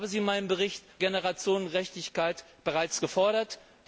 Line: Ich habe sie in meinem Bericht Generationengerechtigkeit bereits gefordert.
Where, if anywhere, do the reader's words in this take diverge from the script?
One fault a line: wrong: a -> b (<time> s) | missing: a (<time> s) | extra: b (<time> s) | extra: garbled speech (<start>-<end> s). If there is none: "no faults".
no faults